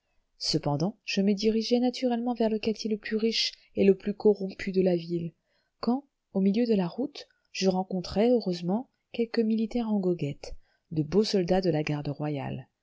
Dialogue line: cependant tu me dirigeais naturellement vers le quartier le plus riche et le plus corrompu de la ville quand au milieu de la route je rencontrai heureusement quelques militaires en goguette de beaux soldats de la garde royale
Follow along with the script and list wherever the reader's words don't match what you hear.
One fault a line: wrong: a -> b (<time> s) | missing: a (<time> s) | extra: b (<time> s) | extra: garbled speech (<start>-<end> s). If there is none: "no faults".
wrong: tu -> je (1.1 s)